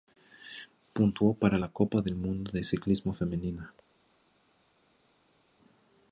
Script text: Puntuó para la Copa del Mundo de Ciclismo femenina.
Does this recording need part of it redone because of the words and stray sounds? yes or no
no